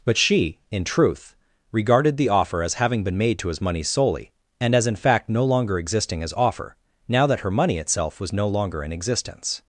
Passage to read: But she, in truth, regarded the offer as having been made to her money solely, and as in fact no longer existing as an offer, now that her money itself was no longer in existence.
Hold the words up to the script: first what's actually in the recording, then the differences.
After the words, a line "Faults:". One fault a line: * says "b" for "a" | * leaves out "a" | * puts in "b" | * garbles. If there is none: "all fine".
But she, in truth, regarded the offer as having been made to his money solely, and as in fact no longer existing as offer, now that her money itself was no longer in existence.
Faults:
* says "his" for "her"
* leaves out "an"